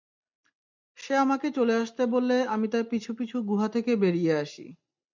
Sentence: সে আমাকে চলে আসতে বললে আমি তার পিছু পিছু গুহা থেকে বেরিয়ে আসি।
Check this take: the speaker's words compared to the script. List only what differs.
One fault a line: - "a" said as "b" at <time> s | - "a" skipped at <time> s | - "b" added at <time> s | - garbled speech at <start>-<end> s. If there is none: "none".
none